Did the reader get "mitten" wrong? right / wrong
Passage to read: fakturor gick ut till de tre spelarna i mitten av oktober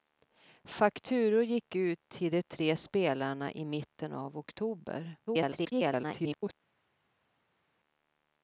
right